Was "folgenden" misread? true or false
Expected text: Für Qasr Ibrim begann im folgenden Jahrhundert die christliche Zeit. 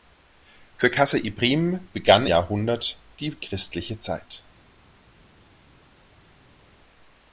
true